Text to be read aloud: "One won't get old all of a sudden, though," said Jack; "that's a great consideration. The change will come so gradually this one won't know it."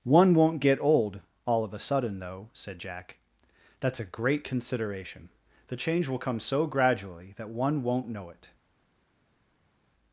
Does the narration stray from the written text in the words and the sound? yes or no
yes